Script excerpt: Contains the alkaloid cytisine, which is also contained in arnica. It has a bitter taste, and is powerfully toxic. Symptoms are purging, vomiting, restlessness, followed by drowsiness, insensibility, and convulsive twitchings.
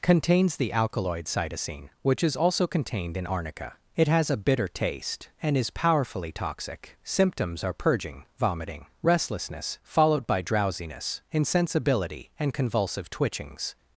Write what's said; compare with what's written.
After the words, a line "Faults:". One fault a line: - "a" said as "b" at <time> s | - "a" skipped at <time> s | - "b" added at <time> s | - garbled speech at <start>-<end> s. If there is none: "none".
Contains the alkaloid cytisine, which is also contained in arnica. It has a bitter taste, and is powerfully toxic. Symptoms are purging, vomiting, restlessness, followed by drowsiness, insensibility, and convulsive twitchings.
Faults:
none